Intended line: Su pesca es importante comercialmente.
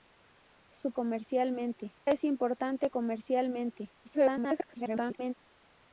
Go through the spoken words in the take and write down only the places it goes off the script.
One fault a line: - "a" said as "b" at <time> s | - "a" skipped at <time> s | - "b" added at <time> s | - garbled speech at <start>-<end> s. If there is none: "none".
- "pesca" said as "comercialmente" at 0.9 s
- garbled speech at 4.0-5.3 s